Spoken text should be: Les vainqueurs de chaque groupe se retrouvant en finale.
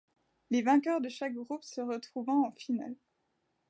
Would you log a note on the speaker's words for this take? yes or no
no